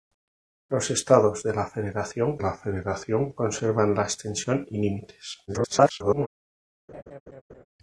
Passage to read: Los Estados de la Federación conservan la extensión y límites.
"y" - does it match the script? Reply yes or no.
yes